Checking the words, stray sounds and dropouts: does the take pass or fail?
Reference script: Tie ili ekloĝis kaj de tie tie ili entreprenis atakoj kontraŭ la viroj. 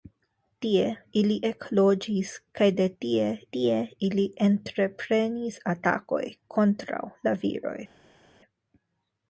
pass